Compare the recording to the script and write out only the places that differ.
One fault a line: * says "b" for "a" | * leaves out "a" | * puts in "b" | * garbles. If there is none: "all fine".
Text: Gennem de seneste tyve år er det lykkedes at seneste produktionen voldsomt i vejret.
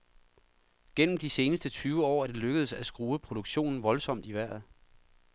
* says "skrue" for "seneste"